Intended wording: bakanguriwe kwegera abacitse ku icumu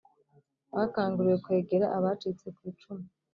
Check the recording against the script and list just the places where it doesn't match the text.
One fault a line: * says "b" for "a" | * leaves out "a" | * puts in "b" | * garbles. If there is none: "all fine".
all fine